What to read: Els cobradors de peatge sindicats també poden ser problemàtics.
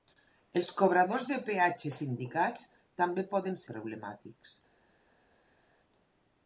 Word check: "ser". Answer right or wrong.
wrong